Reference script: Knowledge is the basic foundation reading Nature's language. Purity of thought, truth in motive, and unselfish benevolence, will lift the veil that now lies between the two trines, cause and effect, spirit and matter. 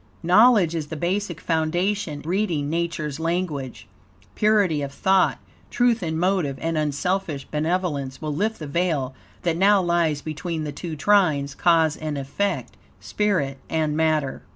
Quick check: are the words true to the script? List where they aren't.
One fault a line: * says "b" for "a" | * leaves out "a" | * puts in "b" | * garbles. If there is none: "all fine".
all fine